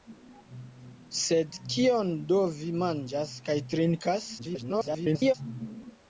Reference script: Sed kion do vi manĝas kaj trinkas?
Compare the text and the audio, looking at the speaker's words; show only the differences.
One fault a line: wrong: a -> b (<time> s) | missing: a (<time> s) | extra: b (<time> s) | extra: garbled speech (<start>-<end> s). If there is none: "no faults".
extra: garbled speech (4.4-5.3 s)